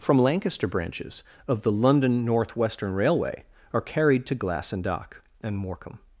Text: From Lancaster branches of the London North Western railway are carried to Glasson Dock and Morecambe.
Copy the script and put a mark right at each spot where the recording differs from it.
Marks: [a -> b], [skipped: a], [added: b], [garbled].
From Lancaster branches of the London North Western railway are carried to Glasson Dock and Morecambe.